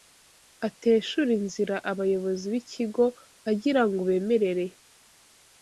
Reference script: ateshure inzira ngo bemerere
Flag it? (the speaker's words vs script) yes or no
yes